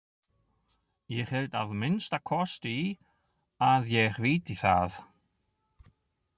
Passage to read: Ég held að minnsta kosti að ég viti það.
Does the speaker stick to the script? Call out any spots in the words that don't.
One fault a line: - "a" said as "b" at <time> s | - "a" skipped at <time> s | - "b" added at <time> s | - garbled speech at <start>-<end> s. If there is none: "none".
none